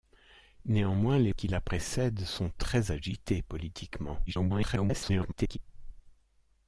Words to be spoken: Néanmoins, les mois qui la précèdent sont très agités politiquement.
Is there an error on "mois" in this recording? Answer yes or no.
yes